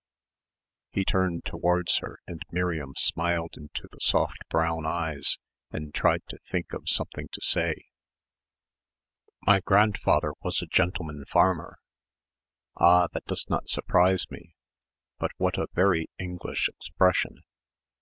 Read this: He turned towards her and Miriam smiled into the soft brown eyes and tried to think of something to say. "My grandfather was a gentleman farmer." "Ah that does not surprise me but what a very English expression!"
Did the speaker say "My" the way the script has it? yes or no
yes